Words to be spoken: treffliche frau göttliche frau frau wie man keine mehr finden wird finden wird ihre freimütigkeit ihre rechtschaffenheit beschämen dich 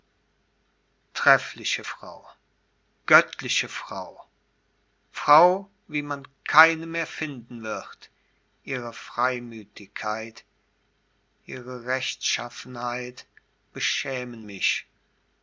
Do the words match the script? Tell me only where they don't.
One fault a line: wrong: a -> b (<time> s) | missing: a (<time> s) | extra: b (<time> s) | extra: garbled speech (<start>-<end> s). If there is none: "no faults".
missing: finden wird (8.1 s)
wrong: dich -> mich (14.4 s)